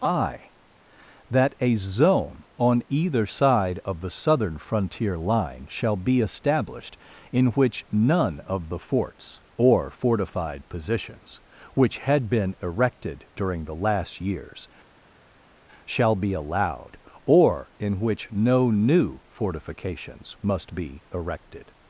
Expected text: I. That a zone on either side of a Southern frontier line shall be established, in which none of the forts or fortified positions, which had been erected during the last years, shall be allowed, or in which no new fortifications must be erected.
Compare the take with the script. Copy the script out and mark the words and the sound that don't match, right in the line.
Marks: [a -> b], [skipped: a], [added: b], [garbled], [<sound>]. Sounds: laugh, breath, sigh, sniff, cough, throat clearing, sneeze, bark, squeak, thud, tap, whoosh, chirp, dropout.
I. That a zone on either side of [a -> the] Southern frontier line shall be established, in which none of the forts or fortified positions, which had been erected during the last years, shall be allowed, or in which no new fortifications must be erected.